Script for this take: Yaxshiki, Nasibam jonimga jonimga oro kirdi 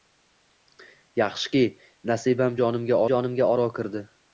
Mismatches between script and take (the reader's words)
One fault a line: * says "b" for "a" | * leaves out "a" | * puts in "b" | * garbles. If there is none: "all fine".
all fine